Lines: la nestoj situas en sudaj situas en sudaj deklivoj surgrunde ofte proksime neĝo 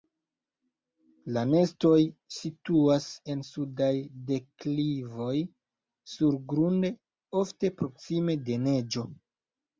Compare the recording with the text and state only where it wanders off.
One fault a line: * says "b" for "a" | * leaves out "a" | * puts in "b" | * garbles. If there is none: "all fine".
* leaves out "situas en sudaj"
* puts in "de"